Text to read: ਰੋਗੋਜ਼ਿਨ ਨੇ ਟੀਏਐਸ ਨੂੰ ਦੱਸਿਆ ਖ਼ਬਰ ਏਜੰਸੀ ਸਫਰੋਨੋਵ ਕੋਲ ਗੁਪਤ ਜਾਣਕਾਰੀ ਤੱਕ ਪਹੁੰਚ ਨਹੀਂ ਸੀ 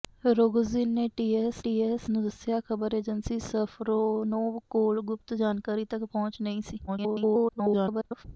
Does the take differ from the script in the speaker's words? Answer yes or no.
yes